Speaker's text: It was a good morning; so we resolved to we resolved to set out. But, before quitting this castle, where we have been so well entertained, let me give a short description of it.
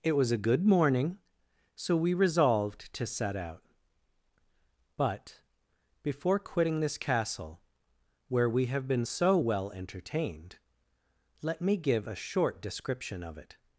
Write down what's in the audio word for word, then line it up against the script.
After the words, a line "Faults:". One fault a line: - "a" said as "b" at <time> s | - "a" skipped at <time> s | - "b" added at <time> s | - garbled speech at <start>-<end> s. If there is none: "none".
It was a good morning; so we resolved to set out. But, before quitting this castle, where we have been so well entertained, let me give a short description of it.
Faults:
- "we resolved to" skipped at 3.0 s